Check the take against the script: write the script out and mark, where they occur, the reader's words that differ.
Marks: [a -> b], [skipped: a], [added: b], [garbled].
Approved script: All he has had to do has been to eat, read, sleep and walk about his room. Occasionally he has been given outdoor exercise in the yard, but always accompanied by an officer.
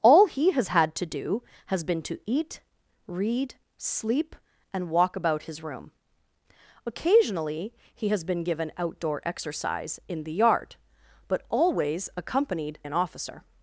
All he has had to do has been to eat, read, sleep and walk about his room. Occasionally he has been given outdoor exercise in the yard, but always accompanied [skipped: by] an officer.